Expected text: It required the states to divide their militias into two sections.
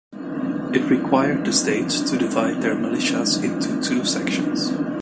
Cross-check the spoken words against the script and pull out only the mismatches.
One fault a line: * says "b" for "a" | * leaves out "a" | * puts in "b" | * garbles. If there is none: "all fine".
all fine